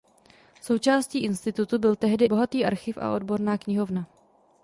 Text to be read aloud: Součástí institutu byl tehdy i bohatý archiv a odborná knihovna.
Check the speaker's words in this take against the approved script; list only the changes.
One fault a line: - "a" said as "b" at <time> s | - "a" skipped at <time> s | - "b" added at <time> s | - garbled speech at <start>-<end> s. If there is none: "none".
- "i" skipped at 2.2 s